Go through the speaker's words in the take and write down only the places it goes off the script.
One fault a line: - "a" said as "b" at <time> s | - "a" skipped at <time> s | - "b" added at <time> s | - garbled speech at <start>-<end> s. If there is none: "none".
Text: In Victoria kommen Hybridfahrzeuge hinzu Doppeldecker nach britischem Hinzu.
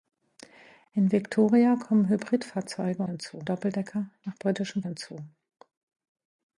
none